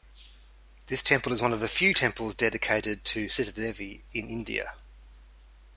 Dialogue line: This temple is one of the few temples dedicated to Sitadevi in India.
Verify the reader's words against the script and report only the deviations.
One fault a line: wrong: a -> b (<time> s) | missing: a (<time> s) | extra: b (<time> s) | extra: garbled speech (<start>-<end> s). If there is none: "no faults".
no faults